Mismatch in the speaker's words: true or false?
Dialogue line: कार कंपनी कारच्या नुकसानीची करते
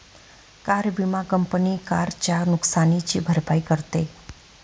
true